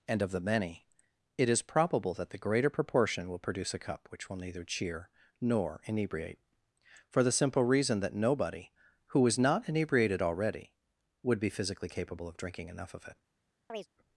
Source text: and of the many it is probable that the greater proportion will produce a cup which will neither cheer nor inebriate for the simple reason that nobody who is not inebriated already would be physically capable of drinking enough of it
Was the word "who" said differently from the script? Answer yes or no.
no